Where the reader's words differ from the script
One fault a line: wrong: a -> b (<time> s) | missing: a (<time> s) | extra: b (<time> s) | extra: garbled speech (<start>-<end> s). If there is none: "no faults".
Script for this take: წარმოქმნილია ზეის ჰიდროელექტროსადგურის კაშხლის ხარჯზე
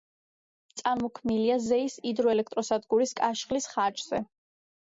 no faults